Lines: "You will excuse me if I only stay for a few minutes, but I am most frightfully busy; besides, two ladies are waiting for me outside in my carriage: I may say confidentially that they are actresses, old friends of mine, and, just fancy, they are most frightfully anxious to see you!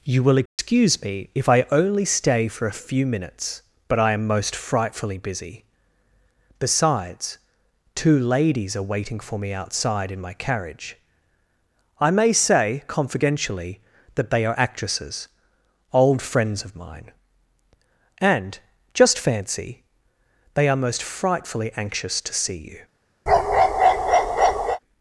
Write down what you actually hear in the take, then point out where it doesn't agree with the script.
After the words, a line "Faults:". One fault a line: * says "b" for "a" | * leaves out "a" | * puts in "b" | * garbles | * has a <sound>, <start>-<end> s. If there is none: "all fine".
"You will excuse me if I only stay for a few minutes, but I am most frightfully busy; besides, two ladies are waiting for me outside in my carriage: I may say confidentially that they are actresses, old friends of mine, and, just fancy, they are most frightfully anxious to see you!
Faults:
* has a dropout, 0.5-0.6 s
* has a bark, 23.3-24.8 s